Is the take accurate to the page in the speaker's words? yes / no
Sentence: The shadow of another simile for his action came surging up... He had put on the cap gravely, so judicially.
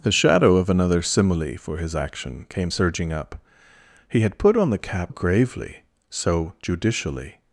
yes